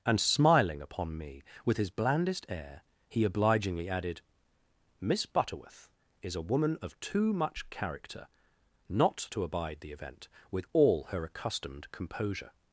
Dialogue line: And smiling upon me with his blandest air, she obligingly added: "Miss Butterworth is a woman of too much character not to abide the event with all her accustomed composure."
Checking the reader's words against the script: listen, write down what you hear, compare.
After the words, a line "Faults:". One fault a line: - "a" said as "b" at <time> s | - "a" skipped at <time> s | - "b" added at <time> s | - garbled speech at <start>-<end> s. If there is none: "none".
And smiling upon me with his blandest air, he obligingly added: "Miss Butterworth is a woman of too much character not to abide the event with all her accustomed composure."
Faults:
- "she" said as "he" at 3.1 s